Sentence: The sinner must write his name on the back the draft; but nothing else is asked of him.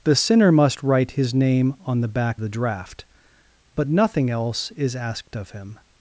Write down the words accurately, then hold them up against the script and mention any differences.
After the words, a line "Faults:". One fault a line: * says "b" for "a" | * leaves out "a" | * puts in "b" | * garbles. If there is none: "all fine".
The sinner must write his name on the back the draft; but nothing else is asked of him.
Faults:
all fine